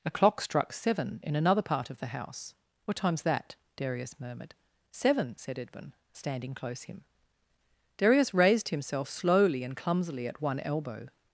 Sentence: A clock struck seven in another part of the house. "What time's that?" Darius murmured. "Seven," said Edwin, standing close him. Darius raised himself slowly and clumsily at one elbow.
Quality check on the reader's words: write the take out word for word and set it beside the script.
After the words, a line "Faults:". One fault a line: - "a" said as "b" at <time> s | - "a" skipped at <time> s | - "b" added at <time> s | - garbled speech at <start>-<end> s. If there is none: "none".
A clock struck seven in another part of the house. "What time's that?" Darius murmured. "Seven," said Edwin, standing close him. Darius raised himself slowly and clumsily at one elbow.
Faults:
none